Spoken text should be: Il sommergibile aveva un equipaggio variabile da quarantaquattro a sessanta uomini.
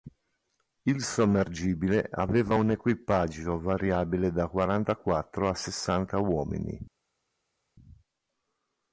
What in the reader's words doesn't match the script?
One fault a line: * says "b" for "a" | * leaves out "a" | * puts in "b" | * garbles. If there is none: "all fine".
all fine